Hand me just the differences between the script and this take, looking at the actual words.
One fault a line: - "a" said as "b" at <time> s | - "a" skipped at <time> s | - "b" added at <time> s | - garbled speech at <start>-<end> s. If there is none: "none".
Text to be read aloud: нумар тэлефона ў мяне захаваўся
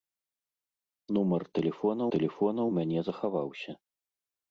- "тэлефона" added at 2.2 s